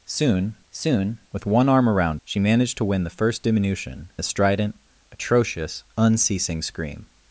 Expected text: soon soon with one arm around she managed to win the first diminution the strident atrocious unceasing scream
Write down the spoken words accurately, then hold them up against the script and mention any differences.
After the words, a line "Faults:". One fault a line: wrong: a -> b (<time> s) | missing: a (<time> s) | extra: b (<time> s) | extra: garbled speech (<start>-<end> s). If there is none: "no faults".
soon soon with one arm around she managed to win the first diminution the strident atrocious unceasing scream
Faults:
no faults